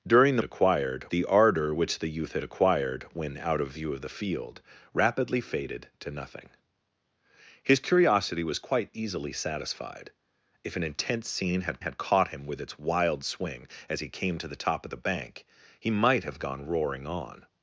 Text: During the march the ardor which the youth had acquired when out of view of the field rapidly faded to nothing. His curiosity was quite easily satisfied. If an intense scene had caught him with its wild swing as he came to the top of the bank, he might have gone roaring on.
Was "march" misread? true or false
true